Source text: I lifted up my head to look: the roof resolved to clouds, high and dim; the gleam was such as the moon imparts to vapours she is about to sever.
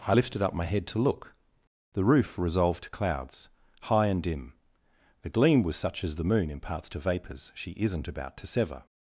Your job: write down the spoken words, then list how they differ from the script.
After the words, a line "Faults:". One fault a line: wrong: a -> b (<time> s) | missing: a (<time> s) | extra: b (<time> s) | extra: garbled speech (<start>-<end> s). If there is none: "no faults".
I lifted up my head to look: the roof resolved to clouds, high and dim; the gleam was such as the moon imparts to vapours she isn't about to sever.
Faults:
wrong: is -> isn't (7.7 s)